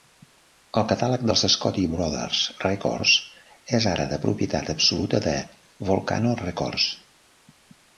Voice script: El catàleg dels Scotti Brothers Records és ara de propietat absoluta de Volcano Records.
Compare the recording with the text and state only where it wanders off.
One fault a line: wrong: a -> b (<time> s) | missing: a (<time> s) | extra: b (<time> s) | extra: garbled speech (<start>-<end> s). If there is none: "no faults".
no faults